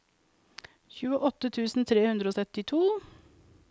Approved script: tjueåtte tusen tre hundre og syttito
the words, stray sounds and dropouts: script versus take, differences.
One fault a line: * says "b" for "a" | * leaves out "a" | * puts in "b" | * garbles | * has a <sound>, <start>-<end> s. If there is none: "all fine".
all fine